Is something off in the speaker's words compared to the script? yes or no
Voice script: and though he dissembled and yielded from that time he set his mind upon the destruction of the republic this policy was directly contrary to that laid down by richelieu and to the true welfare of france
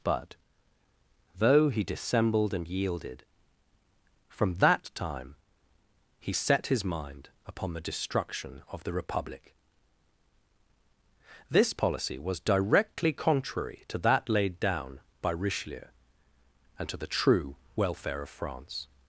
yes